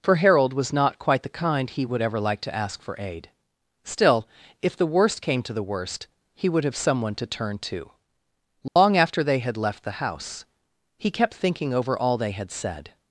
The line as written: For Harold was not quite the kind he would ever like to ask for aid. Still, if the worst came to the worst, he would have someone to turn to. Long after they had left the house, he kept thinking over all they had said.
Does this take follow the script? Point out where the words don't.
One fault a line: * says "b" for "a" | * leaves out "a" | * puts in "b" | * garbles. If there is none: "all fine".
all fine